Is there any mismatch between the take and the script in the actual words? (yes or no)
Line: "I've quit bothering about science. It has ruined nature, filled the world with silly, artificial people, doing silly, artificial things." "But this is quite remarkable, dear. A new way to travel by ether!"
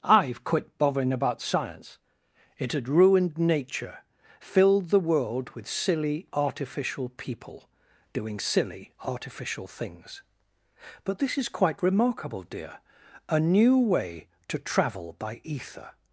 yes